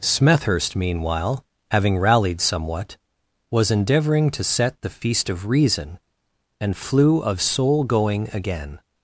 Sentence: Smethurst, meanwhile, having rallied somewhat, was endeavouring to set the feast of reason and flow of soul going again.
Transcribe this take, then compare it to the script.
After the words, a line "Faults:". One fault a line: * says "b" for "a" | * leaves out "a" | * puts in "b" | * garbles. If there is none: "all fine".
Smethurst, meanwhile, having rallied somewhat, was endeavouring to set the feast of reason and flew of soul going again.
Faults:
* says "flew" for "flow"